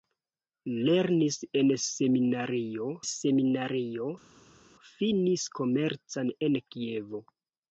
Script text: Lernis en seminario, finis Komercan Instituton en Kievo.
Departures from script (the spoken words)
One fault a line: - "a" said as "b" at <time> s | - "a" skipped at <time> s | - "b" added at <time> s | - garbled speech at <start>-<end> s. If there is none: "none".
- "seminario" added at 3.1 s
- "Instituton" skipped at 6.3 s